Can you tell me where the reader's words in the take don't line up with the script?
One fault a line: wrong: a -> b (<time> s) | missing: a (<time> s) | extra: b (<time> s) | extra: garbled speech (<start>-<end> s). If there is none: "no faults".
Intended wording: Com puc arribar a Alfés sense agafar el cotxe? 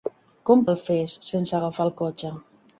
missing: puc arribar a (0.6 s)